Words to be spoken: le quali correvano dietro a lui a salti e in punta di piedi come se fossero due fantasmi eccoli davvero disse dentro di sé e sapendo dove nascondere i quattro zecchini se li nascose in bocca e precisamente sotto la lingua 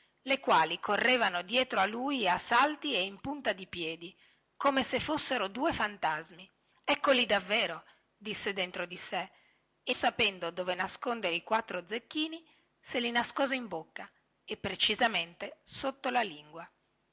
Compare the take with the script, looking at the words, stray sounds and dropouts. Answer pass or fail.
pass